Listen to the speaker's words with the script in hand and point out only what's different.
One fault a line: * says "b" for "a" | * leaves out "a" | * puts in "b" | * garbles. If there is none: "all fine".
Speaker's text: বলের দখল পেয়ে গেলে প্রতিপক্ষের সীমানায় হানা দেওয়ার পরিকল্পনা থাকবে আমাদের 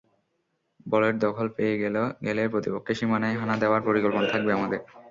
all fine